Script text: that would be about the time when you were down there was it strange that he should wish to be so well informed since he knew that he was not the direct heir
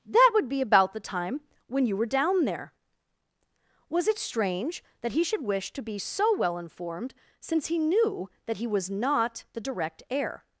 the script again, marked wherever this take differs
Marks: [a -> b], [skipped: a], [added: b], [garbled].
that would be about the time when you were down there was it strange that he should wish to be so well informed since he knew that he was not the direct heir